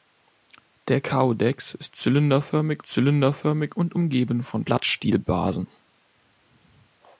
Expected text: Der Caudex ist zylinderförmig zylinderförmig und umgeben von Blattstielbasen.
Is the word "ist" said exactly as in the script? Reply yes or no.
yes